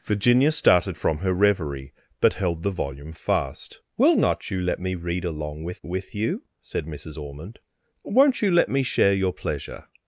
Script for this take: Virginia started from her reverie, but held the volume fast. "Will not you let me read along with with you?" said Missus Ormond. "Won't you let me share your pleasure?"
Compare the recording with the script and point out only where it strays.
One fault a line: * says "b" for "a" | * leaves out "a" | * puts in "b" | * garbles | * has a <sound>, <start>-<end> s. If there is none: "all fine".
all fine